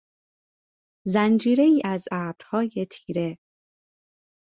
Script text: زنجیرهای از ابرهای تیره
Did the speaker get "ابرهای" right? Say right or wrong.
right